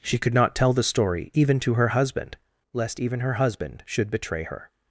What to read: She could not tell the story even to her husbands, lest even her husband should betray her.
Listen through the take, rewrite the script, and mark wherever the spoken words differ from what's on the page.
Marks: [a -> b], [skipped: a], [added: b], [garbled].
She could not tell the story even to her [husbands, -> husband] lest even her husband should betray her.